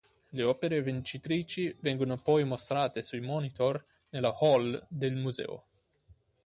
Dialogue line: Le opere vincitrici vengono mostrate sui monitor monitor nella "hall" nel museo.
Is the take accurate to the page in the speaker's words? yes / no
no